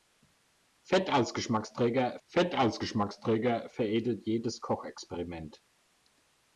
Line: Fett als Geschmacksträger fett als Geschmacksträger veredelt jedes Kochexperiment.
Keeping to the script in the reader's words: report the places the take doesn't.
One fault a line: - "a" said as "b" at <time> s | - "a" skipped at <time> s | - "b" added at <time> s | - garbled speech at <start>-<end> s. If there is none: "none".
none